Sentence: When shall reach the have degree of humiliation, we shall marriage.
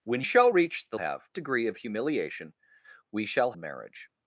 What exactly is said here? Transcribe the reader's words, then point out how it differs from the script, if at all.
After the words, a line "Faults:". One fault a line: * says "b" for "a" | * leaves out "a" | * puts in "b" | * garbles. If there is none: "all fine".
When shall reach the have degree of humiliation, we shall marriage.
Faults:
all fine